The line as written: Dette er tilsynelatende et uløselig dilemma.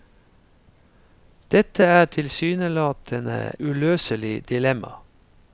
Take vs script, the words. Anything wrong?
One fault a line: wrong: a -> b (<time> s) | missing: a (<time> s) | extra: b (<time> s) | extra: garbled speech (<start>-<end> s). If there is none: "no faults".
missing: et (3.5 s)